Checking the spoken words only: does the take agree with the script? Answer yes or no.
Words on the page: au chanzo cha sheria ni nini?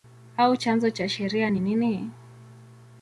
yes